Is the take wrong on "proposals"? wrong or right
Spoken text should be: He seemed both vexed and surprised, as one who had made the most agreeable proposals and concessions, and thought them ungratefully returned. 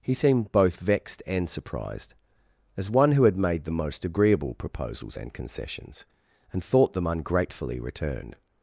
right